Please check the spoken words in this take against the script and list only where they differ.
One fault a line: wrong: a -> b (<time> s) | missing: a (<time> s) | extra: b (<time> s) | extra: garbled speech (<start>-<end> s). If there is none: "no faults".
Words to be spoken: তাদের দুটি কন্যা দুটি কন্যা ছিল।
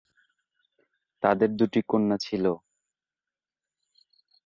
missing: দুটি কন্যা (2.2 s)